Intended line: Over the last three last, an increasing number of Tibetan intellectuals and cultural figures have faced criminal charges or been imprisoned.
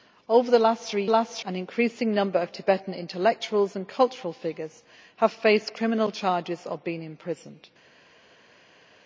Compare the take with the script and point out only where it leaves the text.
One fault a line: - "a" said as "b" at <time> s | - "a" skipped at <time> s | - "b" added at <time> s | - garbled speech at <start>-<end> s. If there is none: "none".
none